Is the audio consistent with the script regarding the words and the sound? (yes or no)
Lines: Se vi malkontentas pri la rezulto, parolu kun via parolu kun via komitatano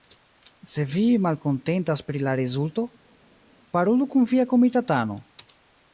no